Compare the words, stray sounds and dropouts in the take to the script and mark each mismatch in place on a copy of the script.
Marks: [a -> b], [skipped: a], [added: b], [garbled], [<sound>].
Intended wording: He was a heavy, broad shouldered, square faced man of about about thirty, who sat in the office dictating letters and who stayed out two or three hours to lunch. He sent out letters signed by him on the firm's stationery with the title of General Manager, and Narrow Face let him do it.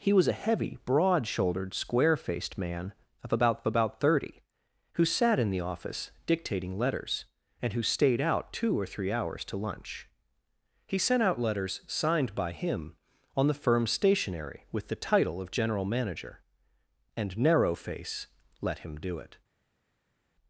He was a heavy, broad shouldered, square faced man of about about thirty, who sat in the office dictating letters and who stayed out two or three hours to lunch. He sent out letters signed by him on the firm's stationery with the title of General Manager, and Narrow Face let him do it.